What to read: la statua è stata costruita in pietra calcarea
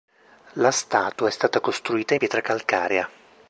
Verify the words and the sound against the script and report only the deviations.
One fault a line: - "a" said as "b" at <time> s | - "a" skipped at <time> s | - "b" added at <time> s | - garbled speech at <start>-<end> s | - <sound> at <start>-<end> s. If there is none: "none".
- dropout at 1.1-1.2 s
- "in" skipped at 2.1 s